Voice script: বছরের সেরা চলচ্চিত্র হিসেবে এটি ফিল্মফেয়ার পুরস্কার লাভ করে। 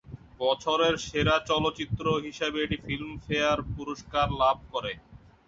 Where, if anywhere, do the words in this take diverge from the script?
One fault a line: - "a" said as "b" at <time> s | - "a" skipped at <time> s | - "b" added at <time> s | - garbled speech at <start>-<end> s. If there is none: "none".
none